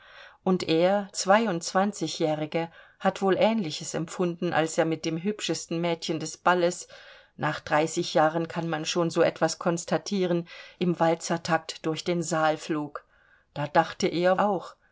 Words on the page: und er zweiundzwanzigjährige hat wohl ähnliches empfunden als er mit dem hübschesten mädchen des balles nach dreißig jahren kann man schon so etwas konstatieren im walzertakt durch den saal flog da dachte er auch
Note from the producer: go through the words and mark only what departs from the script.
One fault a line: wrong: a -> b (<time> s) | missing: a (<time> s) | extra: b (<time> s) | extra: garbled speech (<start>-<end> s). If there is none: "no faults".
no faults